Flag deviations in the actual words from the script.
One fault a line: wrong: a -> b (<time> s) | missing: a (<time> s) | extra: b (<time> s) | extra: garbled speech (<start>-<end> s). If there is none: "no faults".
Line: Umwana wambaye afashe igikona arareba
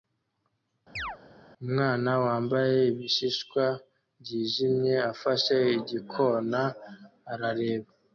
extra: ibishishwa byijimye (2.9 s)